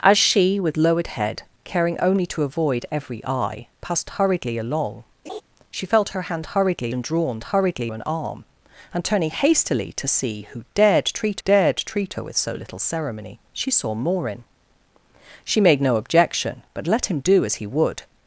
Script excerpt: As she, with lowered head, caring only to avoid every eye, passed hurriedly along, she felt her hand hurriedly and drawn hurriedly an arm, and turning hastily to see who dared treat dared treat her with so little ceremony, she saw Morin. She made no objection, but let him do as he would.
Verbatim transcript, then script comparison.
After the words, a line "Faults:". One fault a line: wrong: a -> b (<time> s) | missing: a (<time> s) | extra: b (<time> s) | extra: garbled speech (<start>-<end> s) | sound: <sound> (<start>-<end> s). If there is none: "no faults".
As she, with lowered head, caring only to avoid every eye, passed hurriedly along, she felt her hand hurriedly and drawn hurriedly an arm, and turning hastily to see who dared treat dared treat her with so little ceremony, she saw Morin. She made no objection, but let him do as he would.
Faults:
sound: laugh (5.3-5.4 s)